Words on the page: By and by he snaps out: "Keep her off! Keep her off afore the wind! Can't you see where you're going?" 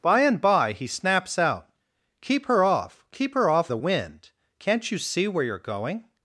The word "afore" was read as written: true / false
false